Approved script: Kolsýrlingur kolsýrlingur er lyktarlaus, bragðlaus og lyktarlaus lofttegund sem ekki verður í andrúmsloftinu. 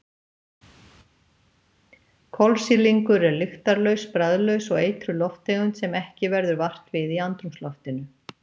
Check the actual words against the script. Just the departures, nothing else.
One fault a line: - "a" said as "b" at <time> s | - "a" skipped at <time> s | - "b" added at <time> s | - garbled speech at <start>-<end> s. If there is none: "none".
- "kolsýrlingur" skipped at 3.3 s
- "lyktarlaus" said as "eitruð" at 4.9 s
- "vart við" added at 6.7 s